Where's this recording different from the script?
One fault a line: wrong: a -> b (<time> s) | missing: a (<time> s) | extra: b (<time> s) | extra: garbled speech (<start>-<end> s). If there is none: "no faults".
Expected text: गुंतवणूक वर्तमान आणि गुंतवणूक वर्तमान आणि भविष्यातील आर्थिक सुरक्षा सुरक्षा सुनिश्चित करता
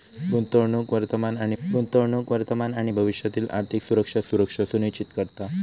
no faults